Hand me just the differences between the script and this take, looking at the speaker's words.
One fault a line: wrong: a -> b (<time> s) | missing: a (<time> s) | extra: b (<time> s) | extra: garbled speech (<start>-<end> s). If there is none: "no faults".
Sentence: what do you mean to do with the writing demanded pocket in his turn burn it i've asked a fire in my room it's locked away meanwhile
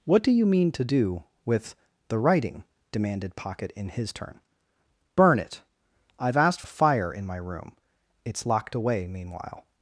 no faults